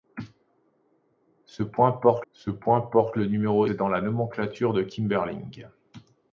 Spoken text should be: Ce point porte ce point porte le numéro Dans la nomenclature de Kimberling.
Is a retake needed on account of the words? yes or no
no